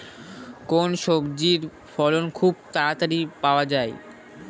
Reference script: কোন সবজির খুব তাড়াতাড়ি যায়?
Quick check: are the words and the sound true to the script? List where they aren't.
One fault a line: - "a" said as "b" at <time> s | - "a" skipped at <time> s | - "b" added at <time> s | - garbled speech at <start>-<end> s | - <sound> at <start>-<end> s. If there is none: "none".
- "ফলন" added at 1.9 s
- "পাওয়া" added at 3.4 s